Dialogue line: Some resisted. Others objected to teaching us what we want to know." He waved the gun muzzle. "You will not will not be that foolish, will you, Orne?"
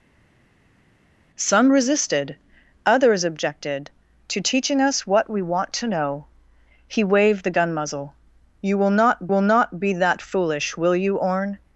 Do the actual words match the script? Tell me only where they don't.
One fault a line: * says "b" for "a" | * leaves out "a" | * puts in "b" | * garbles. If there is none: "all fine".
all fine